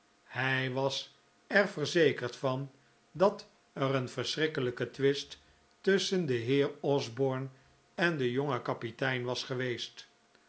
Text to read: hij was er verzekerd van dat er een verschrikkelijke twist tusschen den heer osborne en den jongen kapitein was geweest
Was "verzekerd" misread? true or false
false